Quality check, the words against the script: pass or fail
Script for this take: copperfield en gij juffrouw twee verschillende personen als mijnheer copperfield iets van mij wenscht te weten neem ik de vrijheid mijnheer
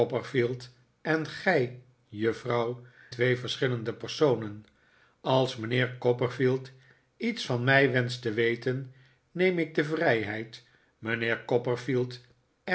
pass